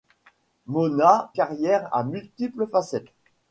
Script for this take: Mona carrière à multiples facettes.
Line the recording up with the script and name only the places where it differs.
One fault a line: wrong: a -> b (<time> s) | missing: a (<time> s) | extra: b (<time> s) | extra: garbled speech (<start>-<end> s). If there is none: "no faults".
no faults